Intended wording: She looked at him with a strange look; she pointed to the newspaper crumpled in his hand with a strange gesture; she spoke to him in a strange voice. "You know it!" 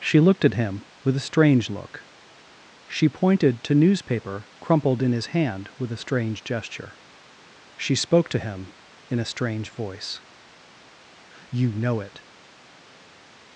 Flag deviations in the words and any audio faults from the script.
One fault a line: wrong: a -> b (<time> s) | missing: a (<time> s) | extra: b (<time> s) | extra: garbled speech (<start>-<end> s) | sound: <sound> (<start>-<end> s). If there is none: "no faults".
missing: the (3.8 s)